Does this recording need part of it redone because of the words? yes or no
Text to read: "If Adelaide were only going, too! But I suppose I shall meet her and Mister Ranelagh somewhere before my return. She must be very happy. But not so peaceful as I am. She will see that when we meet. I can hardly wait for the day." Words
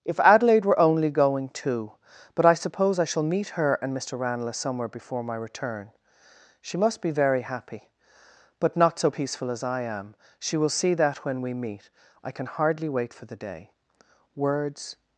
no